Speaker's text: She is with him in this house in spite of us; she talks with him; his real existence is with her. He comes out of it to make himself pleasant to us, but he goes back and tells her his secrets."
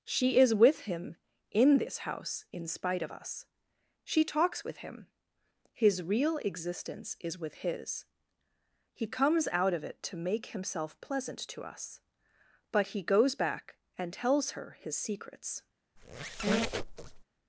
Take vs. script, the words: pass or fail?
fail